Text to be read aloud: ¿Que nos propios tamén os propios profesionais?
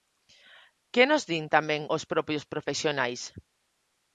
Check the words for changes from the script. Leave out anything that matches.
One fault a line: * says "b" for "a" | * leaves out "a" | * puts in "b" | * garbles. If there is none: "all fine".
* says "din" for "propios"